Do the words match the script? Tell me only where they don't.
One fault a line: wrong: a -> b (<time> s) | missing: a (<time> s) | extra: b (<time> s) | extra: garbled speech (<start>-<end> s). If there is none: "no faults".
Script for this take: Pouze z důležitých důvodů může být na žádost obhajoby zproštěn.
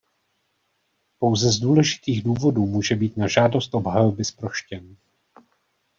no faults